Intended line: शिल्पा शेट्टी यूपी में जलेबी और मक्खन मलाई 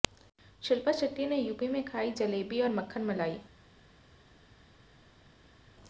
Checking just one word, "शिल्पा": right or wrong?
right